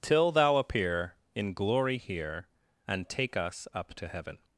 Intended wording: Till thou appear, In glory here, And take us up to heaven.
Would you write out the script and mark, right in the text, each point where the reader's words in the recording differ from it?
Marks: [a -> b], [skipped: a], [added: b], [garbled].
Till thou appear, In glory here, And take us up to heaven.